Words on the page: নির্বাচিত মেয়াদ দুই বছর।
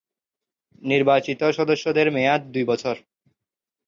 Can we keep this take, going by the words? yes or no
no